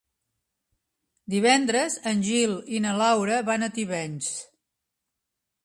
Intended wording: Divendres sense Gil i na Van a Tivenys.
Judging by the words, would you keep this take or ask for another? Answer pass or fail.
fail